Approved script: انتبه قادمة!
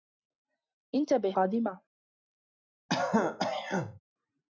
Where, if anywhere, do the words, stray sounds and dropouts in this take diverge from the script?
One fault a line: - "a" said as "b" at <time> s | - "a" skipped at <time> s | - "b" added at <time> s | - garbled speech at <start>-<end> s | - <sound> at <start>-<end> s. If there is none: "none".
- throat clearing at 2.9-4.0 s